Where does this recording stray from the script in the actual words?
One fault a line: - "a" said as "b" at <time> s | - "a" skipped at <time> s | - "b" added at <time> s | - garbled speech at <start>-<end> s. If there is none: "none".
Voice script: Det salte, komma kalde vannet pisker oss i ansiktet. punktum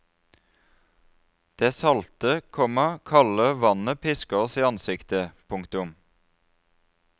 none